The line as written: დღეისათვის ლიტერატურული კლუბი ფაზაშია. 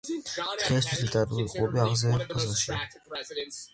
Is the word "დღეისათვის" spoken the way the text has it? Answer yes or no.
yes